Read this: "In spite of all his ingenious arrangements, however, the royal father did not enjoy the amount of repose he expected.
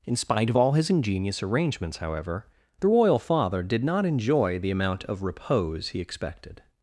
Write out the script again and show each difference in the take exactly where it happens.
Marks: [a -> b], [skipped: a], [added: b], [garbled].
"In spite of all his ingenious arrangements, however, the royal father did not enjoy the amount of repose he expected.